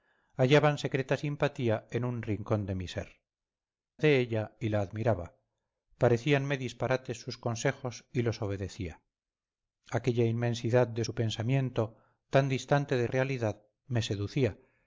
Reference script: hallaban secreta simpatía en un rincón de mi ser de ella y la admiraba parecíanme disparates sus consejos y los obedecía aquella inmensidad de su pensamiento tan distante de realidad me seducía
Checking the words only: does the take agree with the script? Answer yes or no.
yes